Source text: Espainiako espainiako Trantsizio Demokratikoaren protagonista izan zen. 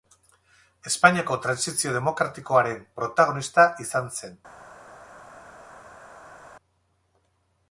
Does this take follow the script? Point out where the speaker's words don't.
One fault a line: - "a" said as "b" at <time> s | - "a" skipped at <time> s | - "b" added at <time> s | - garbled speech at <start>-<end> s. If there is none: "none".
- "espainiako" skipped at 1.4 s